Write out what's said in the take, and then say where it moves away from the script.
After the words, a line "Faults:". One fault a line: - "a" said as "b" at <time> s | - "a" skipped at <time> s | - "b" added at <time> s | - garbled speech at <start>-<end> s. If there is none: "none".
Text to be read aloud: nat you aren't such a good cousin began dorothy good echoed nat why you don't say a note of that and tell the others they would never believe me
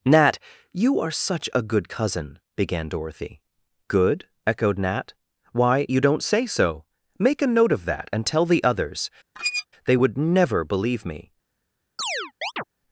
nat you are such a good cousin began dorothy good echoed nat why you don't say so make a note of that and tell the others they would never believe me
Faults:
- "aren't" said as "are" at 1.0 s
- "so make" added at 6.4 s